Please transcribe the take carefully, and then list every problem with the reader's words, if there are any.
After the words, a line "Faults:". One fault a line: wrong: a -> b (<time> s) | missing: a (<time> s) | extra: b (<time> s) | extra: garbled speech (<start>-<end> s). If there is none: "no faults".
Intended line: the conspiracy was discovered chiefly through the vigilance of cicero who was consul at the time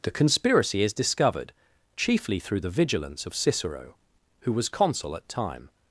the conspiracy is discovered chiefly through the vigilance of cicero who was consul at time
Faults:
wrong: was -> is (0.8 s)
missing: the (5.3 s)